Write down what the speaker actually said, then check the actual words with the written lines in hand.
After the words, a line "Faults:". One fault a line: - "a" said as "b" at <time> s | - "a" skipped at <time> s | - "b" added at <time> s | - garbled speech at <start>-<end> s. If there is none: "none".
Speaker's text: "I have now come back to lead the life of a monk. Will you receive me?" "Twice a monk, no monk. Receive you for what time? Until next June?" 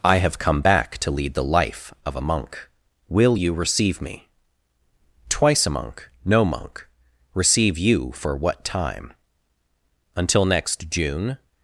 "I have come back to lead the life of a monk. Will you receive me?" "Twice a monk, no monk. Receive you for what time? Until next June?"
Faults:
- "now" skipped at 0.4 s